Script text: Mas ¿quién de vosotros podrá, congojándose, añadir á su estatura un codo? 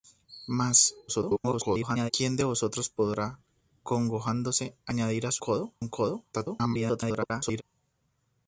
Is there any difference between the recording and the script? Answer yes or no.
yes